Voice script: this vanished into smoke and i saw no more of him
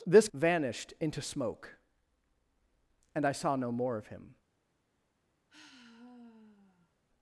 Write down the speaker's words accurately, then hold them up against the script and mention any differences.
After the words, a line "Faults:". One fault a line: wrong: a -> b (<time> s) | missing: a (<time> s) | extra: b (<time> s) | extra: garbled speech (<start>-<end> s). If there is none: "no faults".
this vanished into smoke and i saw no more of him
Faults:
no faults